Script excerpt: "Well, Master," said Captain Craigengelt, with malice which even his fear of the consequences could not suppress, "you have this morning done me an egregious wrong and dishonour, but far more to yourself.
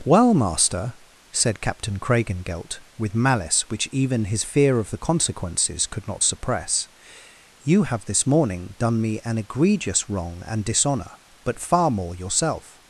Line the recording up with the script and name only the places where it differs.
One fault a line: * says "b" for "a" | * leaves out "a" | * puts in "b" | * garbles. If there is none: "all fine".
* leaves out "to"